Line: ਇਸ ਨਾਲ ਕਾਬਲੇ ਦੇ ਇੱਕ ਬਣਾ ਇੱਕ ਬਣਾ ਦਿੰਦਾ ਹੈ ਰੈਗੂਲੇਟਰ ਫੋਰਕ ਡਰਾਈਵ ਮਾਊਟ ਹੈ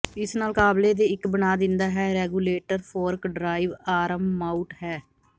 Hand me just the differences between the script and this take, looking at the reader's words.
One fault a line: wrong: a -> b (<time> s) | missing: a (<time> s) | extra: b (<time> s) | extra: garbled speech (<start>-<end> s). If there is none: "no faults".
missing: ਇੱਕ ਬਣਾ (1.6 s)
extra: ਆਰਮ (3.9 s)